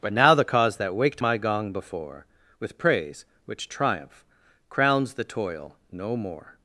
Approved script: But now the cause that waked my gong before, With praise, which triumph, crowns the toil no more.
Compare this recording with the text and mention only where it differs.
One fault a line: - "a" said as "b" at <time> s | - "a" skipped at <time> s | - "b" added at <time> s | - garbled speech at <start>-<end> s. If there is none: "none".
none